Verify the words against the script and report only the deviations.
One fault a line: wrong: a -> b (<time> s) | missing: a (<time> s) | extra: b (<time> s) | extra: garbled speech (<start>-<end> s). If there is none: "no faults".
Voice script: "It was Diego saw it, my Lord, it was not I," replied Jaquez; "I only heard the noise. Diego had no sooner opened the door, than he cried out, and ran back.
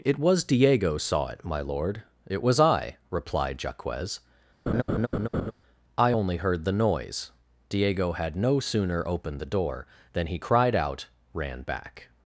missing: not (2.6 s)
missing: and (11.1 s)